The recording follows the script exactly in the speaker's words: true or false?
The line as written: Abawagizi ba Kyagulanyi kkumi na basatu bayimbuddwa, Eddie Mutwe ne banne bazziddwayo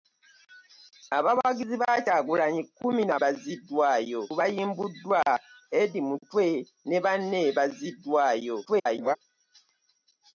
false